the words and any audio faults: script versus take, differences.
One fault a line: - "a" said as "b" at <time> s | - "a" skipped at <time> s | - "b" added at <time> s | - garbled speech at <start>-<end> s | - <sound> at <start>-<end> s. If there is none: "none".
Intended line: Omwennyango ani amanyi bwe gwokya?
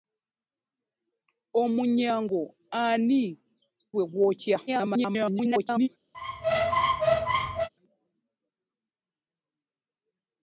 - "amanyi" skipped at 3.2 s
- garbled speech at 4.7-5.9 s
- squeak at 6.1-7.7 s